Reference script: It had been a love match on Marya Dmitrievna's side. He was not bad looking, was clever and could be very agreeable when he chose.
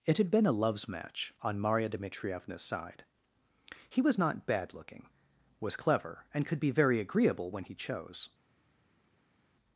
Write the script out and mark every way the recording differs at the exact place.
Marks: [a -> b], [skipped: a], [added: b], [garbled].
It had been a [love -> loves] match on Marya Dmitrievna's side. He was not bad looking, was clever and could be very agreeable when he chose.